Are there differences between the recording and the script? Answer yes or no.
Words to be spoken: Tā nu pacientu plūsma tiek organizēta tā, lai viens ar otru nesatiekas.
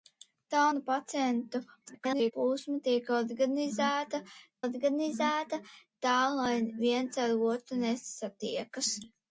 yes